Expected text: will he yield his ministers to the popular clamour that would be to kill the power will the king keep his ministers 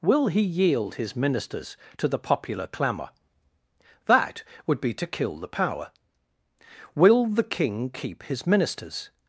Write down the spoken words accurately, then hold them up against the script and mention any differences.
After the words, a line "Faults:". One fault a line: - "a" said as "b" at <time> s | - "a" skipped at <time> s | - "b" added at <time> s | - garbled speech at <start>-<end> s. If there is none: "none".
will he yield his ministers to the popular clamour that would be to kill the power will the king keep his ministers
Faults:
none